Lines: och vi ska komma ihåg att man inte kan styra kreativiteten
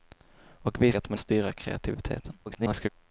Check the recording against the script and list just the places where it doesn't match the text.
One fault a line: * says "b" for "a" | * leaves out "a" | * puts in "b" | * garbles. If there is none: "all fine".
* leaves out "ska komma ihåg"
* leaves out "inte kan"
* garbles